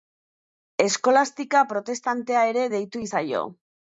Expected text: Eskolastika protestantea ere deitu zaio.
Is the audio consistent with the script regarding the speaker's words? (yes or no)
yes